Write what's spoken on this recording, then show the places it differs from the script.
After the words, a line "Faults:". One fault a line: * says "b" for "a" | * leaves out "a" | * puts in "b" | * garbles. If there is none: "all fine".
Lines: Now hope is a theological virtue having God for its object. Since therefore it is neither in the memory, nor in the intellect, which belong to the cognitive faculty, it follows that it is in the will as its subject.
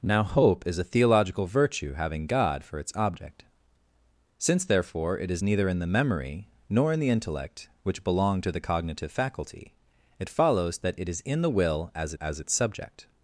Now hope is a theological virtue having God for its object. Since therefore it is neither in the memory, nor in the intellect, which belong to the cognitive faculty, it follows that it is in the will as as its subject.
Faults:
* puts in "as"